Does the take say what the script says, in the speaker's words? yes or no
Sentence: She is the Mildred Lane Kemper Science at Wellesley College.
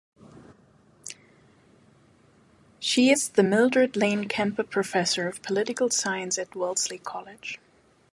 no